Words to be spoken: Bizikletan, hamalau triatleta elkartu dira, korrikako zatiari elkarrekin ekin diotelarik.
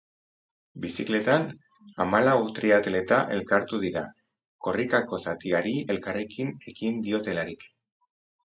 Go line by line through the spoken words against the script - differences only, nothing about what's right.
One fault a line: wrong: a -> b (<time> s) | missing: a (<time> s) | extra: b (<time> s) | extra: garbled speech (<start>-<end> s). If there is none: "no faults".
no faults